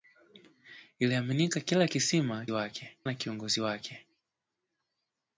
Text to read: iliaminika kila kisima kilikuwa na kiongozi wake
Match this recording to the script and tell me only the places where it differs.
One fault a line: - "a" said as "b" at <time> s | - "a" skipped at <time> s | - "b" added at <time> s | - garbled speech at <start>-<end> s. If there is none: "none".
- "kilikuwa" said as "wake" at 2.5 s